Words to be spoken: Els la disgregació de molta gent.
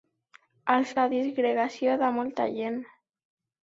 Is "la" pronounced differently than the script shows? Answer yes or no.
no